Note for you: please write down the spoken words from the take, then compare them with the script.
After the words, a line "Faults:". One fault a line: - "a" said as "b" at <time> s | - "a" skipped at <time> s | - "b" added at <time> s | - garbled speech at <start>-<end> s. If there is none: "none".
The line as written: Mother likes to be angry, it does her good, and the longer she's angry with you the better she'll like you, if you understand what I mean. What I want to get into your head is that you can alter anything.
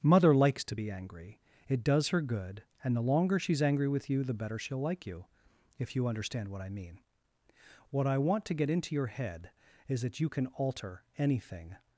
Mother likes to be angry, it does her good, and the longer she's angry with you the better she'll like you, if you understand what I mean. What I want to get into your head is that you can alter anything.
Faults:
none